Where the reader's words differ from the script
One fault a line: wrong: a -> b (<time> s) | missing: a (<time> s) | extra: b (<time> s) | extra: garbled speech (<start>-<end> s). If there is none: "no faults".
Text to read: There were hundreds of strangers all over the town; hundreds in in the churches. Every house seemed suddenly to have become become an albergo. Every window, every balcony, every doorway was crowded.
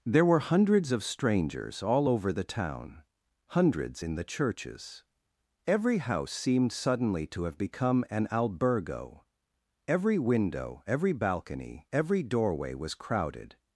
missing: in (4.1 s)
missing: become (8.1 s)